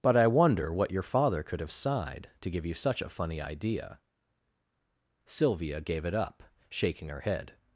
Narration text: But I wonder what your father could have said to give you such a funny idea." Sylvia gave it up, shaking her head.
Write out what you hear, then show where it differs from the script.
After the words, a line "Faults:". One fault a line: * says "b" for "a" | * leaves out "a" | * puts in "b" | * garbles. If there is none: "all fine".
But I wonder what your father could have sighed to give you such a funny idea." Sylvia gave it up, shaking her head.
Faults:
* says "sighed" for "said"